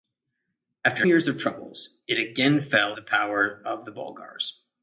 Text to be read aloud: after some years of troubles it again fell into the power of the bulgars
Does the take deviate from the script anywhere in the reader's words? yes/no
yes